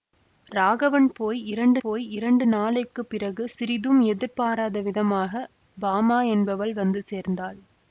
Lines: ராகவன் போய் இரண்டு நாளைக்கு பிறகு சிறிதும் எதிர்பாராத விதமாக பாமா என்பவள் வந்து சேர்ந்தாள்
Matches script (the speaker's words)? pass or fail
fail